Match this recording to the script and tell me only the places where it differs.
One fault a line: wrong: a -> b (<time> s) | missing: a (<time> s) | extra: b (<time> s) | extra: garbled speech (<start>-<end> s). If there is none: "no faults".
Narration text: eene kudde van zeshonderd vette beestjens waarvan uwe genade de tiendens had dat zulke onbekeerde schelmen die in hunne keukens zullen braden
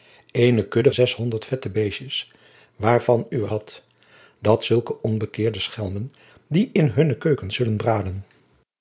missing: van (0.9 s)
missing: genade de tiendens (3.5 s)